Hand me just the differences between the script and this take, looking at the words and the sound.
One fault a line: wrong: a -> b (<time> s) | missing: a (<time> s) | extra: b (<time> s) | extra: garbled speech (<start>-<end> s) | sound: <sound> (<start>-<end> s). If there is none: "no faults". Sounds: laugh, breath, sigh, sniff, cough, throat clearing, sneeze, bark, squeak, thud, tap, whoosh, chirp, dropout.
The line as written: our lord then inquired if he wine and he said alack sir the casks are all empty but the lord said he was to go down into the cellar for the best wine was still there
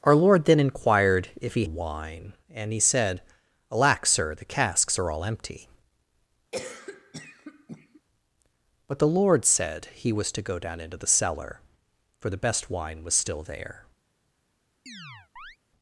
sound: cough (6.5-8.0 s)
sound: chirp (14.9-15.6 s)